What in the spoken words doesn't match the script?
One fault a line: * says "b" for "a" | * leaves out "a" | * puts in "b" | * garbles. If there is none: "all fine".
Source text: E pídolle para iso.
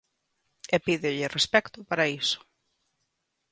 * puts in "respecto"